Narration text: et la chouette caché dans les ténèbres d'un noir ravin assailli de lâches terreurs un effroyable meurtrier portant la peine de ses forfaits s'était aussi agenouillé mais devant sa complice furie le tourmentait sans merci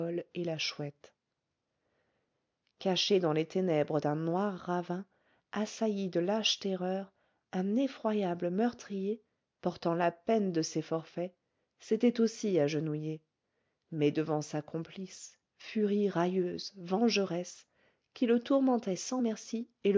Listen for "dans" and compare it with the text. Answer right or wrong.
right